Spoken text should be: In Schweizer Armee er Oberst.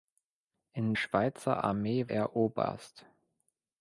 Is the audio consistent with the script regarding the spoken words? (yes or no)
yes